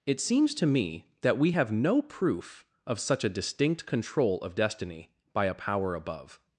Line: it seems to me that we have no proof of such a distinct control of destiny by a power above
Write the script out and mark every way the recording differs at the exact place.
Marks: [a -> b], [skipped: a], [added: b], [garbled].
it seems to me that we have no proof of such a distinct control of destiny by a power above